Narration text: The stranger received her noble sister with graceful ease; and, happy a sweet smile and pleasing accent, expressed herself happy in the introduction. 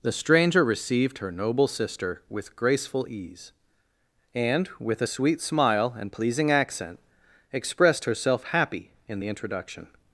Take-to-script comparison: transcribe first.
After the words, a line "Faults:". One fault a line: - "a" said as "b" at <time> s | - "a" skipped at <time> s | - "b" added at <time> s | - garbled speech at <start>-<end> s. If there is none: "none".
The stranger received her noble sister with graceful ease; and, with a sweet smile and pleasing accent, expressed herself happy in the introduction.
Faults:
- "happy" said as "with" at 4.8 s